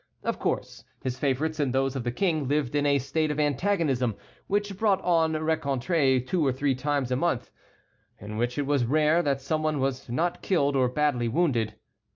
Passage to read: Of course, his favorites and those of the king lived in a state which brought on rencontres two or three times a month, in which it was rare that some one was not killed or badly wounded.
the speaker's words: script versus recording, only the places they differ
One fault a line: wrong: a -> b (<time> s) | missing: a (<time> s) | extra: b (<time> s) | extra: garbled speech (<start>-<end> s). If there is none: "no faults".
extra: of antagonism (3.3 s)